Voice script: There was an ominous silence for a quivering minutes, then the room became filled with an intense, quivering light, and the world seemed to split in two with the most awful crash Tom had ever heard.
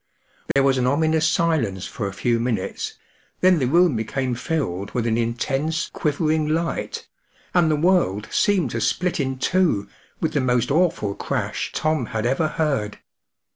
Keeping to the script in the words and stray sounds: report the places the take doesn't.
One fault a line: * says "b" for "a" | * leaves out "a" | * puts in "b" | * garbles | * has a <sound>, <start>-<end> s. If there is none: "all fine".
* has a dropout, 0.5-0.6 s
* says "few" for "quivering"